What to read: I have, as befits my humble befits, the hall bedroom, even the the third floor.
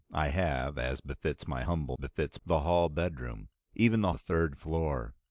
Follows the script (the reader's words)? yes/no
yes